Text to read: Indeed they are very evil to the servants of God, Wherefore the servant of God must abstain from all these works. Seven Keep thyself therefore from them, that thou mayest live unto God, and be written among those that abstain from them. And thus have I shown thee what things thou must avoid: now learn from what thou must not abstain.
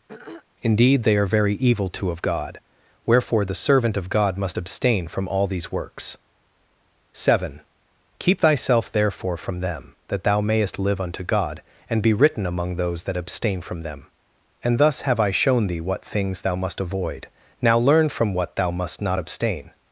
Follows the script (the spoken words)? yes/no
no